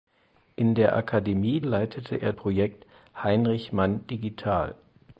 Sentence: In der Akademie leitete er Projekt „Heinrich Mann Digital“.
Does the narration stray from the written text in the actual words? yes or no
no